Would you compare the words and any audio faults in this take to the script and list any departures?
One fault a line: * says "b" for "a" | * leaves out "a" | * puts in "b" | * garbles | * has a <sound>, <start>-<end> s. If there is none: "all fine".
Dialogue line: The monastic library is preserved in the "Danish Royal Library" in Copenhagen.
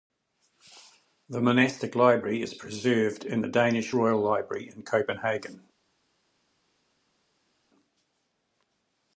all fine